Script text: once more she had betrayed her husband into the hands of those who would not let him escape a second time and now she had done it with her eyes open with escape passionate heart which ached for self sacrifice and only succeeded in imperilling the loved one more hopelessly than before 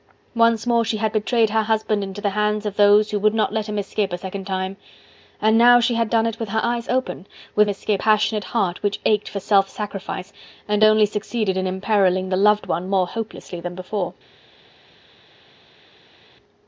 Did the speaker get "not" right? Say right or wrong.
right